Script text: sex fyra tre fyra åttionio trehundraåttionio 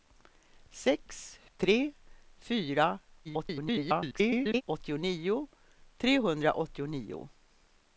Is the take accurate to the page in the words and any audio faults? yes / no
no